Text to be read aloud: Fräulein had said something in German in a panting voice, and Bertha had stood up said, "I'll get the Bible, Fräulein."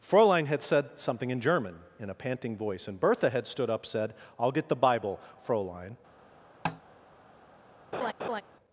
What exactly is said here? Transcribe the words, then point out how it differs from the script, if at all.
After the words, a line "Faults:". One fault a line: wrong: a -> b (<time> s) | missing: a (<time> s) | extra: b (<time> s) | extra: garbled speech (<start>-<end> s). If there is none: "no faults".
Fräulein had said something in German in a panting voice, and Bertha had stood up said, "I'll get the Bible, Fräulein."
Faults:
no faults